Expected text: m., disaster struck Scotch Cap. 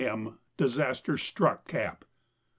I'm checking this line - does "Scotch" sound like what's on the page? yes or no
no